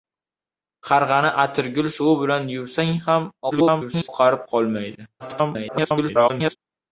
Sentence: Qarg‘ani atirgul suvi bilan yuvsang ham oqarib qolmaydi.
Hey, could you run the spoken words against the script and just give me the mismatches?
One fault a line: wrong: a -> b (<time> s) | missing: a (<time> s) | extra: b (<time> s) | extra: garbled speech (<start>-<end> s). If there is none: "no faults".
extra: garbled speech (3.5-4.1 s)
extra: garbled speech (5.2-6.6 s)